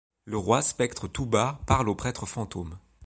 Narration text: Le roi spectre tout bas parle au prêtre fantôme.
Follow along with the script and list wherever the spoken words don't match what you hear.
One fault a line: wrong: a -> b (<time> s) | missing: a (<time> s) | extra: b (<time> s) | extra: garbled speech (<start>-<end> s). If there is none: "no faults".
no faults